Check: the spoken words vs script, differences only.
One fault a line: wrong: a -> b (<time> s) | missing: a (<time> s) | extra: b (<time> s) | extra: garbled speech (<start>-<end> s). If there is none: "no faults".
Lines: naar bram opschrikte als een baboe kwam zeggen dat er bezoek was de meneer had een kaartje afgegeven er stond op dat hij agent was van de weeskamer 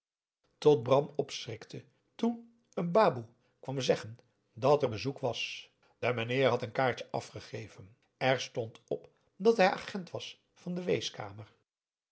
wrong: naar -> tot (0.6 s)
wrong: als -> toen (2.1 s)